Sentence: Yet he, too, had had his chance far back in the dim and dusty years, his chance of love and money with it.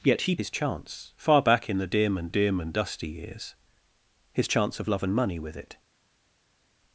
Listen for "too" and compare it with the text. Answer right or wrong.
wrong